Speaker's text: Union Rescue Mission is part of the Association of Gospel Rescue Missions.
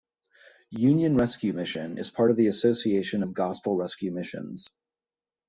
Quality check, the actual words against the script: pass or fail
pass